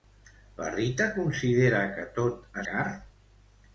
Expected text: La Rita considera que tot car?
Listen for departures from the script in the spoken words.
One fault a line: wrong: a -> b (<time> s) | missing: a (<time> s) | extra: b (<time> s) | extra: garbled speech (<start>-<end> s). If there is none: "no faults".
no faults